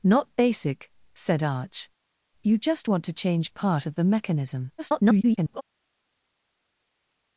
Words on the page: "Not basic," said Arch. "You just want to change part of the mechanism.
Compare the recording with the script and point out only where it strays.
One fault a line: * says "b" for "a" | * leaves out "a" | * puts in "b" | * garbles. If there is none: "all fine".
* garbles